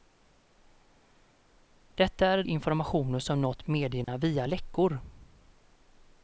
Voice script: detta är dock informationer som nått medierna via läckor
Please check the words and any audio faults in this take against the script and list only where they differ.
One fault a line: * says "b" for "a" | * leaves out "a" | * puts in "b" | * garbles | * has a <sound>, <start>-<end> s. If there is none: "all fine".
* leaves out "dock"
* has a dropout, 4.0-4.1 s